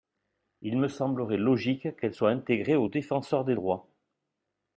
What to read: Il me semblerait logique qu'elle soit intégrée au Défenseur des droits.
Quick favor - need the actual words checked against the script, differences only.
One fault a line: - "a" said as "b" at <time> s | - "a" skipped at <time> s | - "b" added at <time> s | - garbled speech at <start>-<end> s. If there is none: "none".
none